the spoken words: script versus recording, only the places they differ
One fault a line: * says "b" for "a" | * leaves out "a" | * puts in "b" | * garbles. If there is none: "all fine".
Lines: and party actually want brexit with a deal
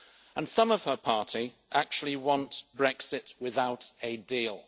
* puts in "some of her"
* says "without" for "with"